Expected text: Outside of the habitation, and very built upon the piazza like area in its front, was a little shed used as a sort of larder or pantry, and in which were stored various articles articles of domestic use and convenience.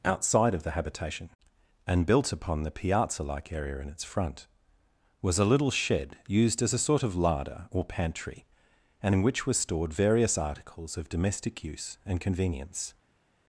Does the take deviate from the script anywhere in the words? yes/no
yes